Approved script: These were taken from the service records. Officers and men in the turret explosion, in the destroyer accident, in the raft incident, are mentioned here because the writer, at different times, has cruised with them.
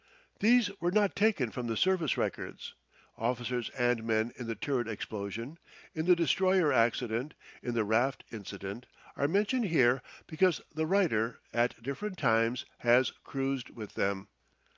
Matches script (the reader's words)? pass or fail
fail